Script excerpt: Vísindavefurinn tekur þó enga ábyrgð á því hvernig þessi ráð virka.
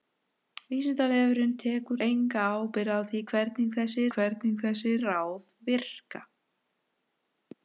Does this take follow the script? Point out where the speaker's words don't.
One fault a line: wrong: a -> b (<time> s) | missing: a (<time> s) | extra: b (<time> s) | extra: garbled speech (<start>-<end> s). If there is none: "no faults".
missing: þó (2.0 s)
extra: hvernig þessi (4.2 s)